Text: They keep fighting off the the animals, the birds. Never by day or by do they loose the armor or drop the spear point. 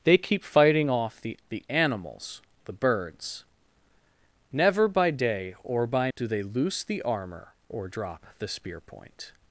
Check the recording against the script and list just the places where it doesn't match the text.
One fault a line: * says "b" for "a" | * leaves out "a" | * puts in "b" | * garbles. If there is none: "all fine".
all fine